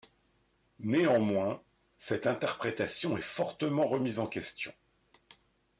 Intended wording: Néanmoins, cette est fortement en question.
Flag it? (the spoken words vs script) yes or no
yes